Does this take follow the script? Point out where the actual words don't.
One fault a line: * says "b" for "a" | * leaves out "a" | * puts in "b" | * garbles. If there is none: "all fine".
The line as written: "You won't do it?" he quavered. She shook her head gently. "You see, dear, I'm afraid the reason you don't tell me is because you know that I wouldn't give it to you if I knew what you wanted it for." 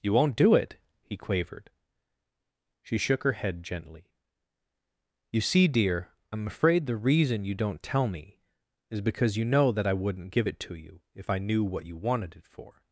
all fine